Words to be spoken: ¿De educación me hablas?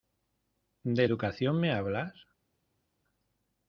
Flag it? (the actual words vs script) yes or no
no